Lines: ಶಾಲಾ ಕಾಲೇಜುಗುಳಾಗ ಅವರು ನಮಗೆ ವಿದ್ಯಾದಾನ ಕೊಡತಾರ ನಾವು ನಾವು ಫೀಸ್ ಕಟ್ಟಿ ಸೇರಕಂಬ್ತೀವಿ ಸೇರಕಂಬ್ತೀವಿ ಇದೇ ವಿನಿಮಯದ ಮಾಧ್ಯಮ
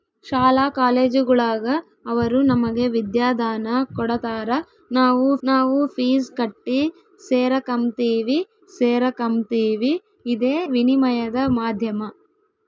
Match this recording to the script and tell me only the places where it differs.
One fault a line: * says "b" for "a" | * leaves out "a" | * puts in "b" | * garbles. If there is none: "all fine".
all fine